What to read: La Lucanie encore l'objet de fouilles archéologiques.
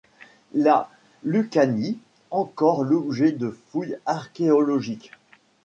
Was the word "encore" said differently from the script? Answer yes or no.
no